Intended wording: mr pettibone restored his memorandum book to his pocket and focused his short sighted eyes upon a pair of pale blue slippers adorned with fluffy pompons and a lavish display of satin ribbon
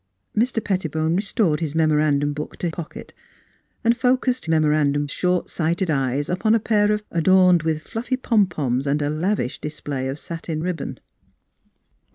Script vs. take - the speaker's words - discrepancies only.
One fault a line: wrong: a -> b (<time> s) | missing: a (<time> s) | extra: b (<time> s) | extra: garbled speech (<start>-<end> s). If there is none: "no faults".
missing: his (2.7 s)
wrong: his -> memorandum (4.5 s)
missing: pale blue slippers (7.1 s)